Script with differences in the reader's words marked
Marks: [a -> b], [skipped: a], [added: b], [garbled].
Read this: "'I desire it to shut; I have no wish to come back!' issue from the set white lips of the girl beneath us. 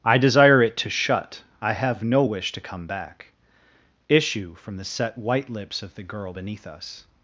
"'I desire it to shut; I have no wish to come back!' issue from the set white lips of the girl beneath us.